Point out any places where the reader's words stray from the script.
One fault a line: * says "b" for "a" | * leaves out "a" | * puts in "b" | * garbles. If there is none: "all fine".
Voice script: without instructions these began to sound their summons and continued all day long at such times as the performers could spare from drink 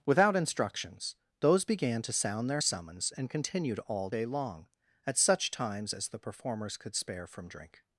* says "those" for "these"